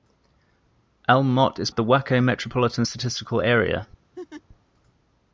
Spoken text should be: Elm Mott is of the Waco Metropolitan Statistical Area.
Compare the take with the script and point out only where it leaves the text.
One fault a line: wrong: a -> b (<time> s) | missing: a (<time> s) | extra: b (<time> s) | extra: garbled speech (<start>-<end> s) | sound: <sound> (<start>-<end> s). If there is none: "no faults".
sound: laugh (4.1-4.4 s)